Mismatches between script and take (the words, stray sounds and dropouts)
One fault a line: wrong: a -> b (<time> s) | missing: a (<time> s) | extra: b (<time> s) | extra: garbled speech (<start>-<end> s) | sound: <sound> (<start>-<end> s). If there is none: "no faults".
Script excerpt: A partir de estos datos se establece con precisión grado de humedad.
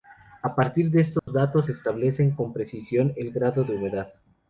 sound: dropout (1.2-1.3 s)
extra: el (3.2 s)